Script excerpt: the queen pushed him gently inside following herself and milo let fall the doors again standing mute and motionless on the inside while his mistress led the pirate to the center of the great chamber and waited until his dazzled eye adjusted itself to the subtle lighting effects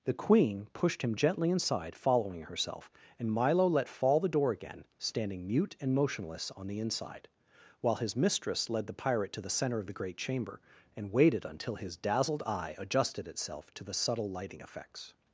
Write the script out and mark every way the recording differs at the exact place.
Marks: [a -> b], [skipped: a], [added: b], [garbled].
the queen pushed him gently inside following herself and milo let fall the [doors -> door] again standing mute and motionless on the inside while his mistress led the pirate to the center of the great chamber and waited until his dazzled eye adjusted itself to the subtle lighting effects